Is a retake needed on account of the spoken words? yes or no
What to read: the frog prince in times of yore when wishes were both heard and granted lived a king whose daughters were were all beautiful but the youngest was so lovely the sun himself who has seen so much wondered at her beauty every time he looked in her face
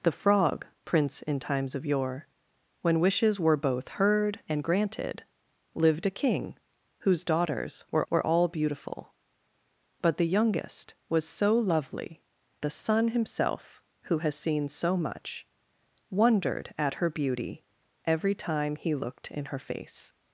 no